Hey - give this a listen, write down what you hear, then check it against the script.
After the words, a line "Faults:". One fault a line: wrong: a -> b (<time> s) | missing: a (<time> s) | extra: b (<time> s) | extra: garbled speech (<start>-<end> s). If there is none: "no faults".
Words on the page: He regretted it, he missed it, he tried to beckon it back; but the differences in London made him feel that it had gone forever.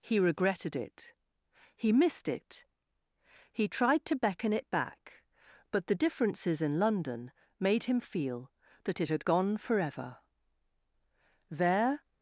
He regretted it, he missed it, he tried to beckon it back; but the differences in London made him feel that it had gone forever. There
Faults:
extra: There (11.5 s)